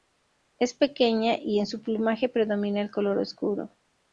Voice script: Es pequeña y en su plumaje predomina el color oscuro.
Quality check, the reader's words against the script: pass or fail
pass